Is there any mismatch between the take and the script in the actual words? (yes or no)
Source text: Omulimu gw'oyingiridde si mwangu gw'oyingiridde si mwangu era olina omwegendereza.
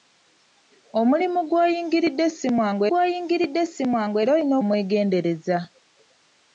no